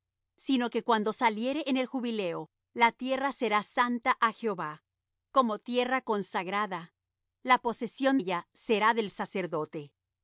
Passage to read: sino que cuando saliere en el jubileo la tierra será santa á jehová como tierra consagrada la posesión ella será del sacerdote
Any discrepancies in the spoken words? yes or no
no